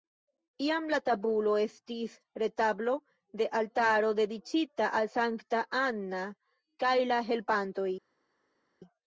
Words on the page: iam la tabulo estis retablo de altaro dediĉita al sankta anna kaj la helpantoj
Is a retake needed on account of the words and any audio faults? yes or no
no